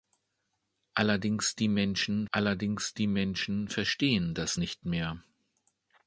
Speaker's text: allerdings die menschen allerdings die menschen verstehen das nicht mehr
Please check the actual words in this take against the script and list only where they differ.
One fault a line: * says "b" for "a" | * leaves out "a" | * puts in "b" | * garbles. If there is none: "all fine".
all fine